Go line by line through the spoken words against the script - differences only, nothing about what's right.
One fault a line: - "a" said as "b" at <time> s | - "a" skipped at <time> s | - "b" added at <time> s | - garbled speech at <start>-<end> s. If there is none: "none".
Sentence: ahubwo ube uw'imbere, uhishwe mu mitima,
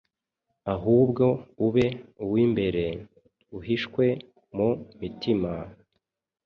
none